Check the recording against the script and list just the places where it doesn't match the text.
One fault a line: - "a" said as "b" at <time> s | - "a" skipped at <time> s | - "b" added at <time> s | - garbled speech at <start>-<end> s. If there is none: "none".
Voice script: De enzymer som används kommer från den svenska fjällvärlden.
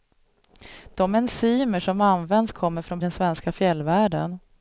none